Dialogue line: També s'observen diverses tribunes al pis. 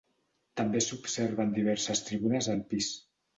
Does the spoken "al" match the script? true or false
true